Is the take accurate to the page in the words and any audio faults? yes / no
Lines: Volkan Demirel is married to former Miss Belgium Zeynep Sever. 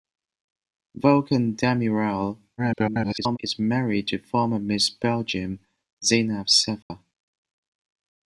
no